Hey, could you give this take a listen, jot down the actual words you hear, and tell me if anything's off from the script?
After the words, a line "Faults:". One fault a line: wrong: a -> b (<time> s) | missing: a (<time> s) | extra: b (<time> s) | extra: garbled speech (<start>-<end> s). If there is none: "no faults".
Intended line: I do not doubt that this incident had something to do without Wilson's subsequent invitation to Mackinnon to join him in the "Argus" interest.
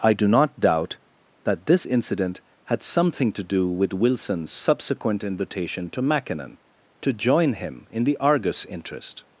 I do not doubt that this incident had something to do with Wilson's subsequent invitation to Mackinnon to join him in the "Argus" interest.
Faults:
wrong: without -> with (3.7 s)